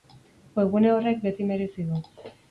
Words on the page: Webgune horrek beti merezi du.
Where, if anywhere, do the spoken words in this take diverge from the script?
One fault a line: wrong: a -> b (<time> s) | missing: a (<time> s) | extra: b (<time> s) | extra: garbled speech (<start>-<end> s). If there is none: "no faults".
no faults